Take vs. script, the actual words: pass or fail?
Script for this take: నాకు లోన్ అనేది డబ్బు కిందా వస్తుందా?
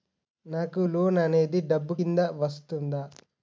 pass